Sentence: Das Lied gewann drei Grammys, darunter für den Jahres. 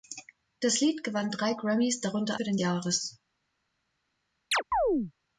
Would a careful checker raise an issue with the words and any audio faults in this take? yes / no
yes